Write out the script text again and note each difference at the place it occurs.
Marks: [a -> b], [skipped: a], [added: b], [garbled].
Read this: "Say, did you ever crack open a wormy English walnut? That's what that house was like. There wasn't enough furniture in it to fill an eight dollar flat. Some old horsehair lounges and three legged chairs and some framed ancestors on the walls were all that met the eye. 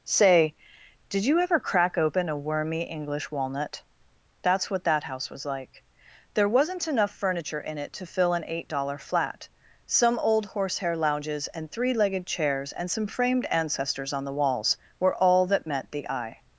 "Say, did you ever crack open a wormy English walnut? That's what that house was like. There wasn't enough furniture in it to fill an eight dollar flat. Some old horsehair lounges and three legged chairs and some framed ancestors on the walls were all that met the eye.